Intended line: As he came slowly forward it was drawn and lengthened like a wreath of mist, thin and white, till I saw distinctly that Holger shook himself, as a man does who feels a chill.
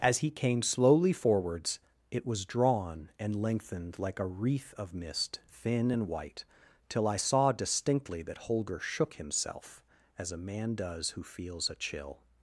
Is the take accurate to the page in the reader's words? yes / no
no